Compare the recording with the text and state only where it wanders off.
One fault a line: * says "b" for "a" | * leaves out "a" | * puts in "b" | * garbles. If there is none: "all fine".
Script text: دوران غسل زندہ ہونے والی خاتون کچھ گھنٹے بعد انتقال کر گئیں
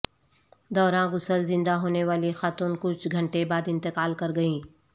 all fine